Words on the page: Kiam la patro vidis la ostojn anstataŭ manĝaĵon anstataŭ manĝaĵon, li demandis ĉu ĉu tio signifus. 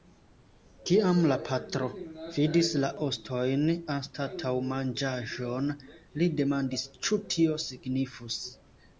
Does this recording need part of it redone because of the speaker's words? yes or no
yes